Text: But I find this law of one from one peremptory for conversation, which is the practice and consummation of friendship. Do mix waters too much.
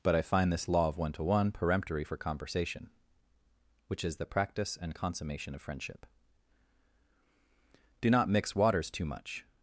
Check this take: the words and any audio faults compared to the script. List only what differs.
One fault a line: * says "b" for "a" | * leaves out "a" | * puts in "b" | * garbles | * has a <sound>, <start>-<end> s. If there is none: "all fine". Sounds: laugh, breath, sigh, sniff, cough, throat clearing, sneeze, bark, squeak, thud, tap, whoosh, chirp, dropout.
* says "to" for "from"
* puts in "not"